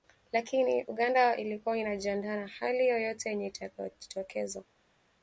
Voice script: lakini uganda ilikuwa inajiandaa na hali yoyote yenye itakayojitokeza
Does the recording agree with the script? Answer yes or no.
yes